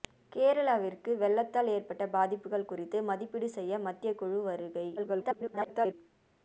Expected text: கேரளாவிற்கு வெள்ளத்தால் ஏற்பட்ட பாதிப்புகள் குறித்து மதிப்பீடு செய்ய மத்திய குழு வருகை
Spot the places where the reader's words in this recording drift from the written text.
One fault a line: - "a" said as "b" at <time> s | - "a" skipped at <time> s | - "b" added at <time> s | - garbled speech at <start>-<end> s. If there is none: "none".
- garbled speech at 5.0-5.9 s